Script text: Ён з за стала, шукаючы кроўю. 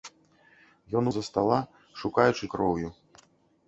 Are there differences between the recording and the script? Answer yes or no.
no